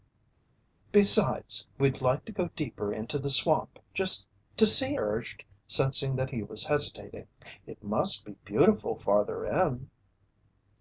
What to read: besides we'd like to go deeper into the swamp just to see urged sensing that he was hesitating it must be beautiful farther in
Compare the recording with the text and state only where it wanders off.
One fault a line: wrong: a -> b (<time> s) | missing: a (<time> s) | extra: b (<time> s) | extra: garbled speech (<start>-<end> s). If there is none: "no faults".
no faults